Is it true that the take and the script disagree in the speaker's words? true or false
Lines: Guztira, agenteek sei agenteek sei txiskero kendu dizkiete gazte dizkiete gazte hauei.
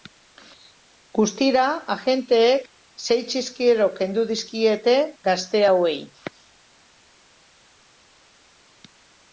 true